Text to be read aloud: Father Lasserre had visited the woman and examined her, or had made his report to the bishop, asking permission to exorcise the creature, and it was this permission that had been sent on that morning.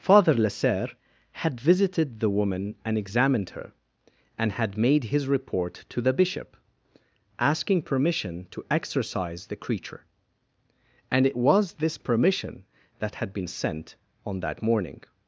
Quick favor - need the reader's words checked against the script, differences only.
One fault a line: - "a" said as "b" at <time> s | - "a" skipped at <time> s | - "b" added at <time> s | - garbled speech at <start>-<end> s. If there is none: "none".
- "or" said as "and" at 4.3 s